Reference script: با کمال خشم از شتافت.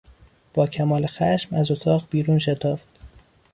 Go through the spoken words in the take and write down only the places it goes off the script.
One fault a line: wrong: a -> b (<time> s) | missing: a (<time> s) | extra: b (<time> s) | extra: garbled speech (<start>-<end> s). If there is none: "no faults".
extra: اتاق بیرون (1.7 s)